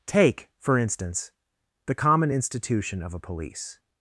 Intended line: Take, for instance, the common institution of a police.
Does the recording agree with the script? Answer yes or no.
yes